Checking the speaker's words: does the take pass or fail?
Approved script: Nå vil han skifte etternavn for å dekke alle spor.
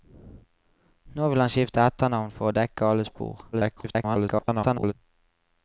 fail